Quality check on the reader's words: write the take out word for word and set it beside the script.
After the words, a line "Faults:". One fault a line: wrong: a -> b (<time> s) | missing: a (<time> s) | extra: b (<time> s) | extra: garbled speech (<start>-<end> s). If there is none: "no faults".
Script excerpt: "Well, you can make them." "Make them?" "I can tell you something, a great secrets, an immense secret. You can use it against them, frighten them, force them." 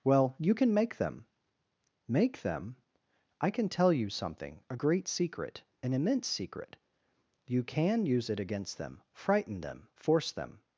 "Well, you can make them." "Make them?" "I can tell you something, a great secret, an immense secret. You can use it against them, frighten them, force them."
Faults:
wrong: secrets -> secret (5.1 s)